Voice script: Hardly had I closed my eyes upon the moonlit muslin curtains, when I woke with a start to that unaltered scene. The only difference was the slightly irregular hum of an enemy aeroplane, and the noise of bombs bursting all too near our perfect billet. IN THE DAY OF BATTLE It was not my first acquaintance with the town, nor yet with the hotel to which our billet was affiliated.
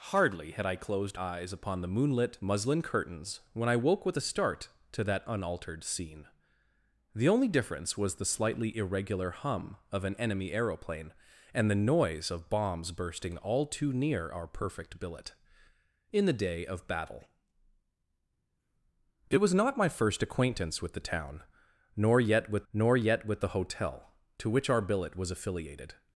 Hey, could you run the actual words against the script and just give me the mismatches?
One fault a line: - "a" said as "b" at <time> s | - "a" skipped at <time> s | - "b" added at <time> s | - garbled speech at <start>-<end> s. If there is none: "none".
- "my" skipped at 1.2 s
- "nor yet with" added at 22.7 s